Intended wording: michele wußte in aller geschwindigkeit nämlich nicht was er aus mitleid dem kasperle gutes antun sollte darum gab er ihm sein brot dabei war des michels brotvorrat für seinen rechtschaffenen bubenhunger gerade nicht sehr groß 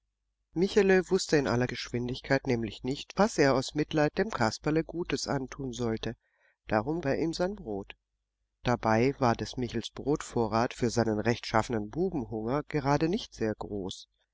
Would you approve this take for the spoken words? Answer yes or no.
no